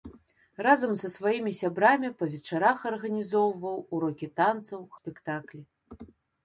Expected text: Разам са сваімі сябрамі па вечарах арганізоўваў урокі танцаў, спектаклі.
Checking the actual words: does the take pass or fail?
pass